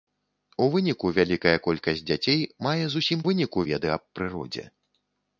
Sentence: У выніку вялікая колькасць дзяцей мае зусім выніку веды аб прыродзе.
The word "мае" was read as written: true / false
true